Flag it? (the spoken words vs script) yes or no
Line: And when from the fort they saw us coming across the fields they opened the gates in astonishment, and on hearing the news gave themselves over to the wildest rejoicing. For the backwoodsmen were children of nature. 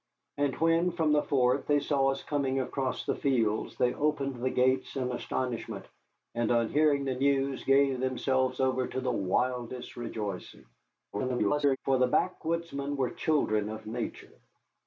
yes